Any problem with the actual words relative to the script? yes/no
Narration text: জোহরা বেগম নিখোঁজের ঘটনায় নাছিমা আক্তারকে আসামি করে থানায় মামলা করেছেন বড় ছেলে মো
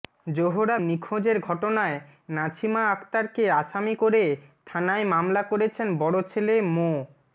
yes